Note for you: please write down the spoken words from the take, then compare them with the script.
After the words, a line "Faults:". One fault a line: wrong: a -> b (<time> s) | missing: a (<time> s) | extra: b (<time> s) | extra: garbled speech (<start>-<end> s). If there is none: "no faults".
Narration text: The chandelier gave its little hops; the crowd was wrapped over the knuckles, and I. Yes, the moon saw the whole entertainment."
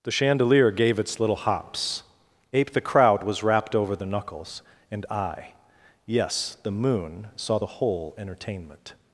The chandelier gave its little hops; ape the crowd was wrapped over the knuckles, and I. Yes, the moon saw the whole entertainment."
Faults:
extra: ape (2.5 s)